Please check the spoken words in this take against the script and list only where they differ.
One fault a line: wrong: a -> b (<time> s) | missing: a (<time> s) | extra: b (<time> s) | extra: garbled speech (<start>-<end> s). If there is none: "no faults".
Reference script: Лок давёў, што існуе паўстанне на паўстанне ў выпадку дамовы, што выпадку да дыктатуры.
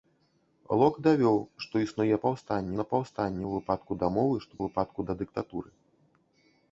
no faults